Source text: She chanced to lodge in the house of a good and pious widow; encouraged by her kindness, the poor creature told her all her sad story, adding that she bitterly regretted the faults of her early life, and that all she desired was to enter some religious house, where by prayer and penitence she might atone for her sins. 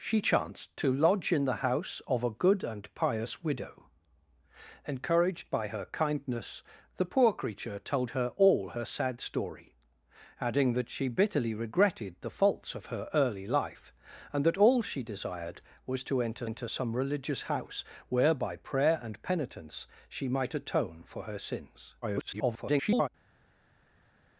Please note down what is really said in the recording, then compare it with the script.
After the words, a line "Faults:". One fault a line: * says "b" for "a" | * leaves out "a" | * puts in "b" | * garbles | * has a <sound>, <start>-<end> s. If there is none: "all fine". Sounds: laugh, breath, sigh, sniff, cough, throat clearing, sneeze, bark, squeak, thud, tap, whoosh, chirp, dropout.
She chanced to lodge in the house of a good and pious widow; encouraged by her kindness, the poor creature told her all her sad story, adding that she bitterly regretted the faults of her early life, and that all she desired was to enter enter some religious house, where by prayer and penitence she might atone for her sins. [garbled]
Faults:
* puts in "enter"
* garbles